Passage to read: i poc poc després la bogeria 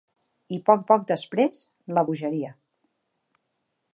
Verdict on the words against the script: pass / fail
pass